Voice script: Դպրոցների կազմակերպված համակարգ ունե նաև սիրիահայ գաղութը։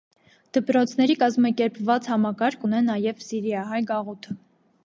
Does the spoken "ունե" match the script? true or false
true